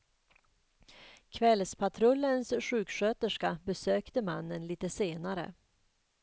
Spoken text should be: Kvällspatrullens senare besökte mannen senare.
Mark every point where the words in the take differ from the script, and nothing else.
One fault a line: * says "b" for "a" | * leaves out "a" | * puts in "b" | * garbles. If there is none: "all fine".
* says "sjuksköterska" for "senare"
* puts in "lite"